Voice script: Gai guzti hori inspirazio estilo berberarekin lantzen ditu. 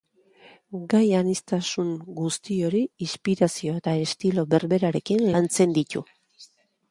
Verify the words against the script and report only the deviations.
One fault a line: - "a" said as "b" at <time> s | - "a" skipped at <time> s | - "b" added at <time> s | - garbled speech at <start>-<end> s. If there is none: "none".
- "aniztasun" added at 1.2 s
- "eta" added at 3.8 s